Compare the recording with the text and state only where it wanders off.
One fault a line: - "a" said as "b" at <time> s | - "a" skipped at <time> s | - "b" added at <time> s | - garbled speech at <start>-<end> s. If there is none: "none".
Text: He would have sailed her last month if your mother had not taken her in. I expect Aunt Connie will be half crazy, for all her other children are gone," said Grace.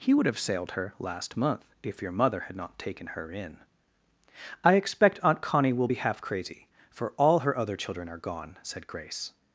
none